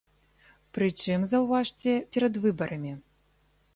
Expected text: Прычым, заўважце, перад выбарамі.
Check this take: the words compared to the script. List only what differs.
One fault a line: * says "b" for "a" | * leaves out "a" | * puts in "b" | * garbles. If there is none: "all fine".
all fine